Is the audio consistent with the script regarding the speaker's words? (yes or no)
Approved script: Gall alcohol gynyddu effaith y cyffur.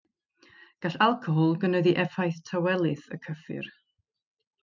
no